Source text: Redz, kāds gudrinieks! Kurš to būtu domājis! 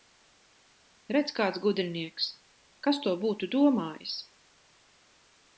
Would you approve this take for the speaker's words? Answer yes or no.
no